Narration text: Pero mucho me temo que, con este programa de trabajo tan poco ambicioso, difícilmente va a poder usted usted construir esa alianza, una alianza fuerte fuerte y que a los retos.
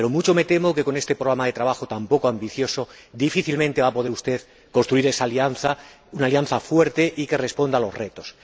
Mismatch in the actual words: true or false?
true